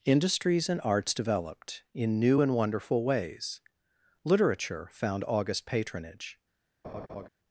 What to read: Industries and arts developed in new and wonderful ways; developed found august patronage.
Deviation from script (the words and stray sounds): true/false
true